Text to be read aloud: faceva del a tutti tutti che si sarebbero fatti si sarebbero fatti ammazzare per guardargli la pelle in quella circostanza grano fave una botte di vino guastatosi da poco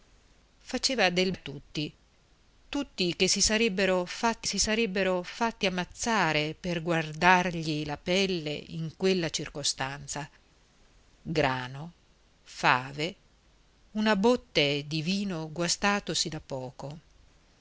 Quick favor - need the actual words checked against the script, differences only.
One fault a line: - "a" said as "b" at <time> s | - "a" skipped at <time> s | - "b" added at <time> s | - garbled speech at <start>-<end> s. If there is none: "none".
none